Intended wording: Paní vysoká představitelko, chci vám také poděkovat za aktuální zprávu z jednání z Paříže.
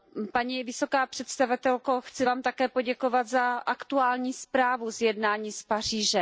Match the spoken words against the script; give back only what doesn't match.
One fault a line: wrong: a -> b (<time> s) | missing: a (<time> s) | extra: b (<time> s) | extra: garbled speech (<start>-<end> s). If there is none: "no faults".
no faults